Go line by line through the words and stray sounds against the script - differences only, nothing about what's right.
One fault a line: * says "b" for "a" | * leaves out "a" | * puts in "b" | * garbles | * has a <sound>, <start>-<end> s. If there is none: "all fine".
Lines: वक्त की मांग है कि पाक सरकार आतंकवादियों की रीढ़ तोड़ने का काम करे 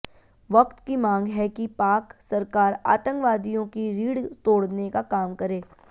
all fine